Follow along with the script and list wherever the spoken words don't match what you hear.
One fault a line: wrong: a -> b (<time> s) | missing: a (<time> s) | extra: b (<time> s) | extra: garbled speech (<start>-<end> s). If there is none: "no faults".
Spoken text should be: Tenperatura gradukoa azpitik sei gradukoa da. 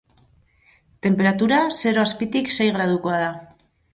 wrong: gradukoa -> zero (1.8 s)